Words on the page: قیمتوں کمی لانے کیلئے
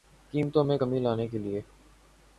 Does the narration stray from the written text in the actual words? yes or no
yes